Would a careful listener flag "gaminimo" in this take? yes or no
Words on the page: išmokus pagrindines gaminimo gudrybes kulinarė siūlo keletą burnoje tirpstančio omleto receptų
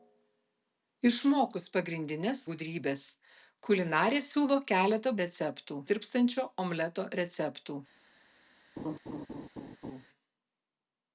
yes